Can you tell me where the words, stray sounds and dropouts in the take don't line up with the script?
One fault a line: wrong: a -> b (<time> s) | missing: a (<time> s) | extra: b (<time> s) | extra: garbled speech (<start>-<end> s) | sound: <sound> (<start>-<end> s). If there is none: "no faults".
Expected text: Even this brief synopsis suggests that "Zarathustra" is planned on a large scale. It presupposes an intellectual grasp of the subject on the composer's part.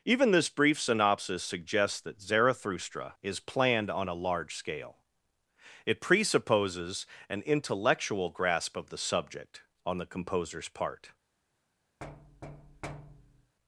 sound: thud (12.0-13.6 s)